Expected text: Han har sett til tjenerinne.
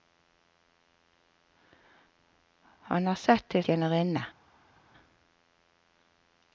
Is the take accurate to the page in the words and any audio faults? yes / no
yes